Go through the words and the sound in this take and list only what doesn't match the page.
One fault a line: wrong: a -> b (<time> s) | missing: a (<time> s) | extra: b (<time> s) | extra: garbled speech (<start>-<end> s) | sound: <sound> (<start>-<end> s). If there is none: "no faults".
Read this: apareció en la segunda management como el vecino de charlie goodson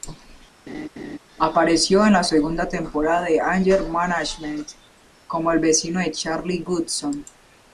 sound: laugh (0.7-1.2 s)
extra: temporada de anger (2.7 s)